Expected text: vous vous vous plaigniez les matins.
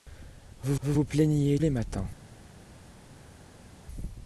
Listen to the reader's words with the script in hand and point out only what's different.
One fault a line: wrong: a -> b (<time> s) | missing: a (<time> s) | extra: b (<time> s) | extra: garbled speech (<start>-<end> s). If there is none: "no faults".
no faults